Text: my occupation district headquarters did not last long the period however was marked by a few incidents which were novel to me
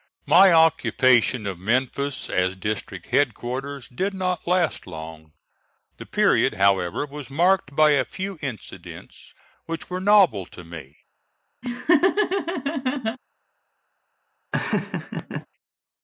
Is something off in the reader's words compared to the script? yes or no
yes